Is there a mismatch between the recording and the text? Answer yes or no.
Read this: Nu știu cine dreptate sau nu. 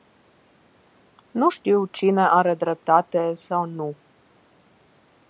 yes